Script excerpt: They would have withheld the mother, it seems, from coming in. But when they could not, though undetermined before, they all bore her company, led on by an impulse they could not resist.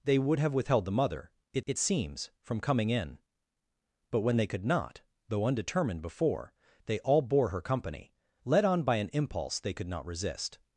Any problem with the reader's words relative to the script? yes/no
yes